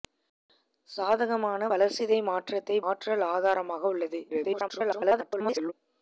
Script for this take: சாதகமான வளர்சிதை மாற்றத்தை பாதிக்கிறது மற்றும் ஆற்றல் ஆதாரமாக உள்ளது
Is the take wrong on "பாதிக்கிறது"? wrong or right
wrong